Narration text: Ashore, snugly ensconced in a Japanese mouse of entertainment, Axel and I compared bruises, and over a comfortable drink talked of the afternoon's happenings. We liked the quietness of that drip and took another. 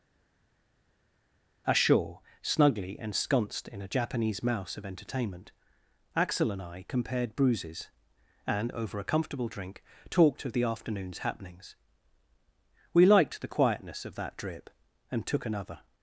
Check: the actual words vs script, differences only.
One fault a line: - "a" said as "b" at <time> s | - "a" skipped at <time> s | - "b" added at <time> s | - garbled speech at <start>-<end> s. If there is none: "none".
none